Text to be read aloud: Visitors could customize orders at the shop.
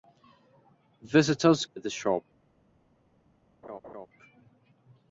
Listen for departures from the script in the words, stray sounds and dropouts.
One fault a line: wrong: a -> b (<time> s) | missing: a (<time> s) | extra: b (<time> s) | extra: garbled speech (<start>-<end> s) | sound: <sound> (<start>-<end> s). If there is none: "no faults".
missing: could customize orders (1.7 s)
sound: laugh (3.6-4.1 s)